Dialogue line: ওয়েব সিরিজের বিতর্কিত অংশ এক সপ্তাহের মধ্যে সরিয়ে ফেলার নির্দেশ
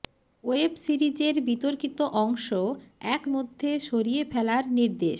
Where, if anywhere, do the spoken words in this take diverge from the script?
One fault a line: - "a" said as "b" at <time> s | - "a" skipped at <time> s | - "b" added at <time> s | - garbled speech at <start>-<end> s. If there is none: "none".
- "সপ্তাহের" skipped at 3.2 s